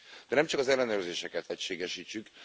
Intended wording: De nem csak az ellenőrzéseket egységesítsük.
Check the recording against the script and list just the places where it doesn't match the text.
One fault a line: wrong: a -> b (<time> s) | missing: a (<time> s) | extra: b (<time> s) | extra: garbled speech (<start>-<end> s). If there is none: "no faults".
no faults